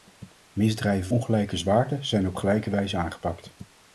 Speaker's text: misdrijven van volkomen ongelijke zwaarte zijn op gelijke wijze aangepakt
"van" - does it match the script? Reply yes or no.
no